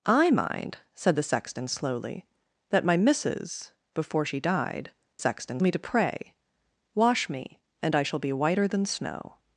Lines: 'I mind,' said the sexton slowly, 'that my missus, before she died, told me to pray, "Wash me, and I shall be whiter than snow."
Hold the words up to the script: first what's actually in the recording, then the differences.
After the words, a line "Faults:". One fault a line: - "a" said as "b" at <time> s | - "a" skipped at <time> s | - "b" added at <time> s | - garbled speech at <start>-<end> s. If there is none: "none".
'I mind,' said the sexton slowly, 'that my missus, before she died, sexton me to pray, "Wash me, and I shall be whiter than snow."
Faults:
- "told" said as "sexton" at 5.2 s